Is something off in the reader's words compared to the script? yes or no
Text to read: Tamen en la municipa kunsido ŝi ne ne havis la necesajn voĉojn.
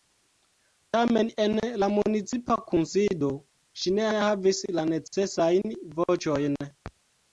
no